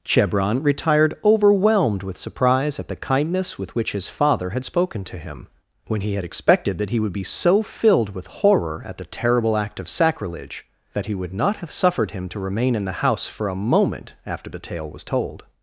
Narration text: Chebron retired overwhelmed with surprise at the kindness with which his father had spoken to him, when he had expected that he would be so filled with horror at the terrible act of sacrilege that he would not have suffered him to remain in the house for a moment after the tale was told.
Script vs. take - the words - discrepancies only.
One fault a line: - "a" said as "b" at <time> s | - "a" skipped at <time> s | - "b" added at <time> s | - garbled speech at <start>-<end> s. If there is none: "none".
none